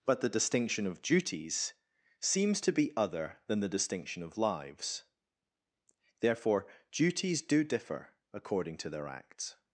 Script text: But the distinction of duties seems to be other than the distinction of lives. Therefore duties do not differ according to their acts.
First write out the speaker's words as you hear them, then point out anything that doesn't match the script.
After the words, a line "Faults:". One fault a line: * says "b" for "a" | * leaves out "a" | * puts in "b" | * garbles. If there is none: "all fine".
But the distinction of duties seems to be other than the distinction of lives. Therefore duties do differ according to their acts.
Faults:
* leaves out "not"